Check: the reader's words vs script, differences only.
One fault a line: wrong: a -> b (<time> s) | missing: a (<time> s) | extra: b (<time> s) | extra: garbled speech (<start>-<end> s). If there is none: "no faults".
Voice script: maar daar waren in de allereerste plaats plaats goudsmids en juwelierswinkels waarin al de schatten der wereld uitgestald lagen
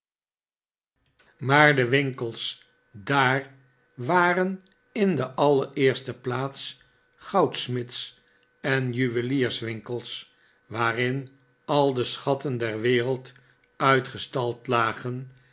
extra: de winkels (1.8 s)
missing: plaats (6.8 s)